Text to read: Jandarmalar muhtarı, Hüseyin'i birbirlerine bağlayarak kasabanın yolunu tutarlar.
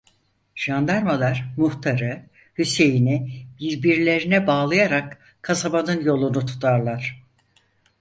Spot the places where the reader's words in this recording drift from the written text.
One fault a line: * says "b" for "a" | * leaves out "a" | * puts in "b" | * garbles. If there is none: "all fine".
all fine